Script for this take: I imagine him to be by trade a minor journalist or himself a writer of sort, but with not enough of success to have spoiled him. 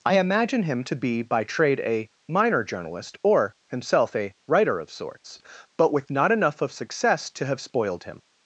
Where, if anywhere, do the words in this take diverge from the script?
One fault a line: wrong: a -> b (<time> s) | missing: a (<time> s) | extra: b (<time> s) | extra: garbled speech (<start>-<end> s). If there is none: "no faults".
wrong: sort -> sorts (4.9 s)